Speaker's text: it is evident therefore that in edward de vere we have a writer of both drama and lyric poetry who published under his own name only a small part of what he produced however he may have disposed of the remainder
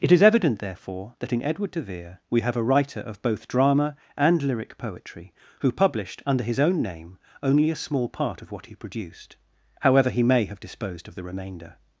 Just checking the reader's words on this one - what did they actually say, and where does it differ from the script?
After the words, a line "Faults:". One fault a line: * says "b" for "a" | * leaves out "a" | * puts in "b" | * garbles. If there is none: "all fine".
it is evident therefore that in edward de vere we have a writer of both drama and lyric poetry who published under his own name only a small part of what he produced however he may have disposed of the remainder
Faults:
all fine